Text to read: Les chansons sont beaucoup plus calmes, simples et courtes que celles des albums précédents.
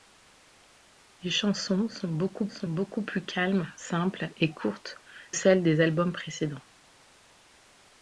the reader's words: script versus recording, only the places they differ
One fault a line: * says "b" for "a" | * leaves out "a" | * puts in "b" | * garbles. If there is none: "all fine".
* puts in "sont beaucoup"
* leaves out "que"